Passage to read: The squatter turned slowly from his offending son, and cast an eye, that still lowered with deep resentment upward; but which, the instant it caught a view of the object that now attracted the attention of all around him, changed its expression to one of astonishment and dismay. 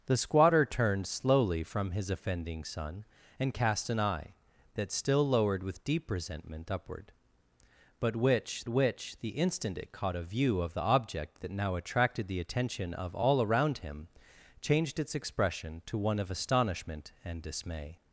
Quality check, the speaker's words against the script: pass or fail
fail